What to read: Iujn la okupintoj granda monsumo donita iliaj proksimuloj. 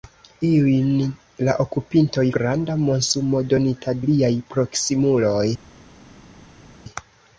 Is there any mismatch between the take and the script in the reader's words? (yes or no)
no